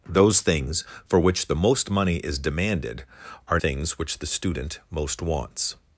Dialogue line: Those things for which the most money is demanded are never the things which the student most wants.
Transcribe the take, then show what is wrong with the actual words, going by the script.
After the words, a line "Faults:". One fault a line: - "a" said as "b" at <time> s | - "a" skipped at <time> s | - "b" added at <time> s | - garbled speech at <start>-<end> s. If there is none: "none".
Those things for which the most money is demanded are things which the student most wants.
Faults:
- "never the" skipped at 3.6 s